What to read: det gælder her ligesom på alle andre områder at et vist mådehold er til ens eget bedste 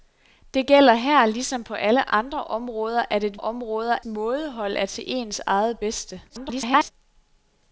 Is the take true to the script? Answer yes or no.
no